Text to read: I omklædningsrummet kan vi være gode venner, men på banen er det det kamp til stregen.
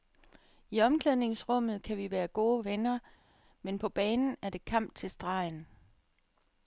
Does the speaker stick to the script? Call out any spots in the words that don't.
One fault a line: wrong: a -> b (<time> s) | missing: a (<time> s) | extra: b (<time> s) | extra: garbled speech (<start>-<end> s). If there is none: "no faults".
missing: det (4.7 s)